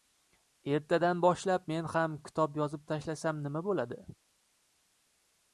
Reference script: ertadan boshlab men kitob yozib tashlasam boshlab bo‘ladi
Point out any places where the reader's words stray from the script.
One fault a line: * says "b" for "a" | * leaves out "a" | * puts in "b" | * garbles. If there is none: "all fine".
* puts in "ham"
* says "nima" for "boshlab"